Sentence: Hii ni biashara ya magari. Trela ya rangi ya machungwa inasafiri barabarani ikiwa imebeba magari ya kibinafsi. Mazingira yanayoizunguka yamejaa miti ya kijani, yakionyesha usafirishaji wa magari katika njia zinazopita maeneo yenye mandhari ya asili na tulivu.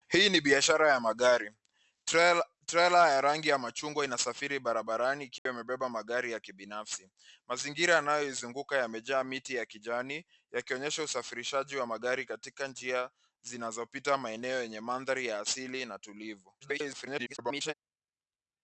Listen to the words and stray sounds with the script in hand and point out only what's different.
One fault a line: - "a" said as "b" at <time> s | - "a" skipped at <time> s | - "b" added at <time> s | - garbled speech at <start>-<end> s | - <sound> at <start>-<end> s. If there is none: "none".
- dropout at 5.4-5.5 s
- garbled speech at 16.6-17.7 s